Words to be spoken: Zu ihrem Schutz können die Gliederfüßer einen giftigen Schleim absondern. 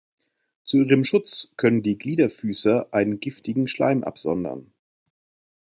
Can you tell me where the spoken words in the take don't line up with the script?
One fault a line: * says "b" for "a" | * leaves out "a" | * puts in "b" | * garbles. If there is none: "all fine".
all fine